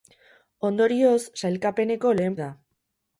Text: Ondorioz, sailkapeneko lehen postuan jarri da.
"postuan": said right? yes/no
no